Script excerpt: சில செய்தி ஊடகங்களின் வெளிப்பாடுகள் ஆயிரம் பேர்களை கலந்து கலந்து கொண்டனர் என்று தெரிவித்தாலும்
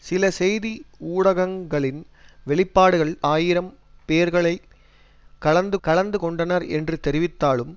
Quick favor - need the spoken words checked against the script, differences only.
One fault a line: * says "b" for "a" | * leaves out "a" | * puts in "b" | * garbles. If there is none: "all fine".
all fine